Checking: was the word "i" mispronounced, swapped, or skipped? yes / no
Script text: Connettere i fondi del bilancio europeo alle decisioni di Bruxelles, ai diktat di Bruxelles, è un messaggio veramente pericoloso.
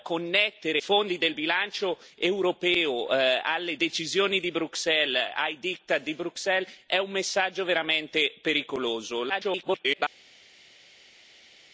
yes